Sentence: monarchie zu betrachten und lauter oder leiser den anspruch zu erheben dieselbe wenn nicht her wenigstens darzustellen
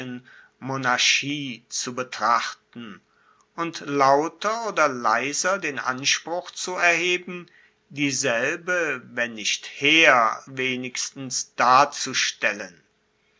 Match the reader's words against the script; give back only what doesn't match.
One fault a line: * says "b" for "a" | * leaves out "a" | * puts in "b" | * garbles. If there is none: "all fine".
all fine